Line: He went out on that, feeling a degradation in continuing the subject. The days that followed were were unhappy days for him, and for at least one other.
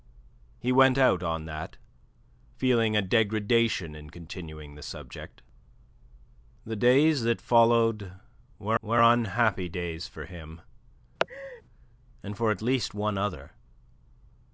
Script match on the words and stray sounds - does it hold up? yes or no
no